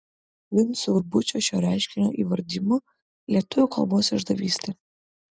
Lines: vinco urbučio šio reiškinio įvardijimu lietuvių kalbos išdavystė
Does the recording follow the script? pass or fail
pass